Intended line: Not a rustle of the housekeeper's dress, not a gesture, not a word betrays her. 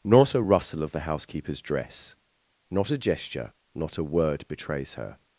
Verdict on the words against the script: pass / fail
pass